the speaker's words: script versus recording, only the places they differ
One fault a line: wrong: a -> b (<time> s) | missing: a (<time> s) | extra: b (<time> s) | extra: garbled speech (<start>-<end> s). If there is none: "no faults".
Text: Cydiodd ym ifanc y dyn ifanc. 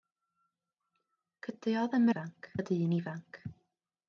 no faults